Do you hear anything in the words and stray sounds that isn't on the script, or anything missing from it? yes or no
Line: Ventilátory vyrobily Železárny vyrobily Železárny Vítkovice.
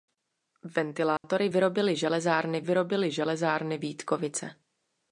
yes